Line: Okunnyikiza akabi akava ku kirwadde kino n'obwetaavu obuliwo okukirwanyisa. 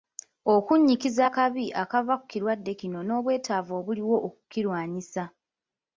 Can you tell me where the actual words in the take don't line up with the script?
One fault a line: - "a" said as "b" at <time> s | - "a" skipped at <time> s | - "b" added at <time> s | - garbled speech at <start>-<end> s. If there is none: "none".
none